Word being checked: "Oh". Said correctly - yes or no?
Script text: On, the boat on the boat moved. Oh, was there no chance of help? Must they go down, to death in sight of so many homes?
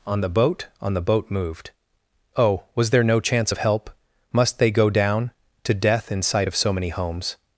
yes